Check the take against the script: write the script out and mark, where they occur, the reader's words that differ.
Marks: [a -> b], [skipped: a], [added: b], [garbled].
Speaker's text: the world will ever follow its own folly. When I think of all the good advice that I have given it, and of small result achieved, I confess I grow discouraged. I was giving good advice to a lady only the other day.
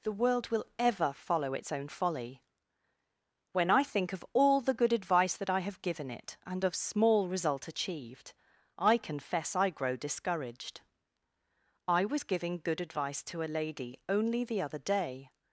the world will ever follow its own folly. When I think of all the good advice that I have given it, and of small result achieved, I confess I grow discouraged. I was giving good advice to a lady only the other day.